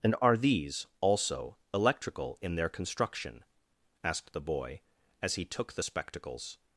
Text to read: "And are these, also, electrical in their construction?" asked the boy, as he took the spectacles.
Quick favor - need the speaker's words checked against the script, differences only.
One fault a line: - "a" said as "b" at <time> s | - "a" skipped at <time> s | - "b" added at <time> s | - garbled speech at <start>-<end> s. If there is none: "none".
none